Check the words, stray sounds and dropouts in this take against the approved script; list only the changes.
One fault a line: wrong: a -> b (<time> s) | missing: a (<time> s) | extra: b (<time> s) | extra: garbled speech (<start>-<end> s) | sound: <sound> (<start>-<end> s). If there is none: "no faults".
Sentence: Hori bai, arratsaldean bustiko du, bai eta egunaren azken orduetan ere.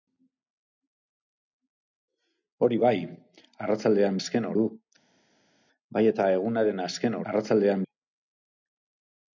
wrong: bustiko -> azken (4.2 s)
wrong: orduetan -> arratsaldean (7.3 s)